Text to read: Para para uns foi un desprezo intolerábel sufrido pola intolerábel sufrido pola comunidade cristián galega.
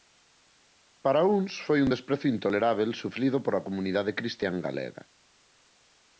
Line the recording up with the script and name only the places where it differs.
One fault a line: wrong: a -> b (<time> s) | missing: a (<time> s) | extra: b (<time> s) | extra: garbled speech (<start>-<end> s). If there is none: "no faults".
missing: para (1.2 s)
missing: intolerábel sufrido pola (3.7 s)